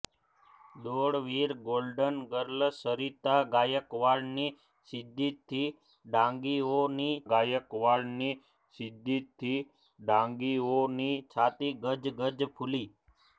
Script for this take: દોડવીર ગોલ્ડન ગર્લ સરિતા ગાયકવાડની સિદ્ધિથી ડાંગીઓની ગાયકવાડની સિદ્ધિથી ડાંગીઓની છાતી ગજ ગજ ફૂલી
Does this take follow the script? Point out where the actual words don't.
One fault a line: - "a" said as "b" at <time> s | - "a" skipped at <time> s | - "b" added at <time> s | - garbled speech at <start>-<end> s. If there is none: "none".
none